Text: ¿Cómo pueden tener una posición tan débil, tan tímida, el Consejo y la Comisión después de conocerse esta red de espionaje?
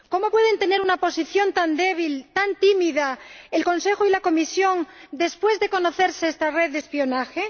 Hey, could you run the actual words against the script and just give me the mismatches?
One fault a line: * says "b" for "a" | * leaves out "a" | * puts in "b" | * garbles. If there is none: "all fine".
all fine